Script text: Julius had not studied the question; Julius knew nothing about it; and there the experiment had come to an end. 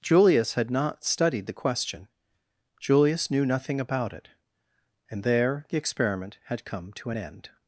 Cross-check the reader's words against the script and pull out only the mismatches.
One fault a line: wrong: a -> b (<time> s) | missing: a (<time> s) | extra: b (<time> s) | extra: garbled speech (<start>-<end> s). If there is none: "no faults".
no faults